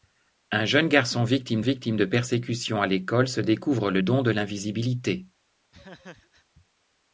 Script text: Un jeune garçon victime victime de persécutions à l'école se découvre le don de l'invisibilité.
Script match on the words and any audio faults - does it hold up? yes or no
no